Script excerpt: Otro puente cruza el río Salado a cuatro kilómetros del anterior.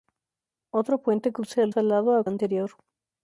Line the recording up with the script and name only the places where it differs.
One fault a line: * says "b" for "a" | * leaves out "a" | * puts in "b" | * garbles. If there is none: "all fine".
* leaves out "río"
* leaves out "cuatro kilómetros del"